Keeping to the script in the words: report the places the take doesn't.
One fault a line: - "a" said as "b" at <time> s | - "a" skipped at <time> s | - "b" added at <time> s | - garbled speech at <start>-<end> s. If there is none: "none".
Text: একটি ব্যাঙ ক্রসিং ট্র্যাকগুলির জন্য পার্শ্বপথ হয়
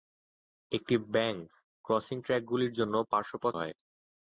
none